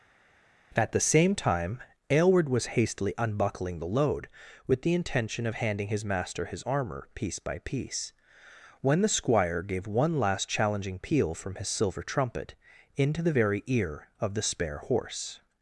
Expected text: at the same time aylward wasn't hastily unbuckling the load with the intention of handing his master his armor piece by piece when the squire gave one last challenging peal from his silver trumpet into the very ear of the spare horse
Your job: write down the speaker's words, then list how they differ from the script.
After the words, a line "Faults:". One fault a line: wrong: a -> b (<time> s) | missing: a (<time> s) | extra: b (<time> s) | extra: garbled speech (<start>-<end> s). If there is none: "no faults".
at the same time aylward was hastily unbuckling the load with the intention of handing his master his armor piece by piece when the squire gave one last challenging peal from his silver trumpet into the very ear of the spare horse
Faults:
wrong: wasn't -> was (2.5 s)